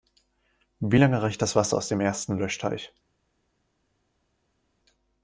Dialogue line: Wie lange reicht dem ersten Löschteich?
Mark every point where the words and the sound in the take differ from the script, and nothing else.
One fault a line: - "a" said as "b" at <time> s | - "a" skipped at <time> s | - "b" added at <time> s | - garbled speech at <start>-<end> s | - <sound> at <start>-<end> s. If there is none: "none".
- "das Wasser aus" added at 1.4 s